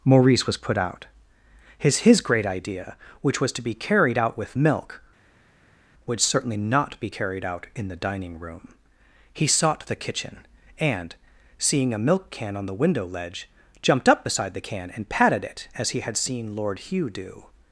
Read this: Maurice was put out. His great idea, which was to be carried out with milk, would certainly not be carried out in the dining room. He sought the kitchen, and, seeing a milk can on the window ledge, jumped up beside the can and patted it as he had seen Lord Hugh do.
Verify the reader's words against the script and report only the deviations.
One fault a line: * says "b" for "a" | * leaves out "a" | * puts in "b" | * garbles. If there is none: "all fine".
* puts in "His"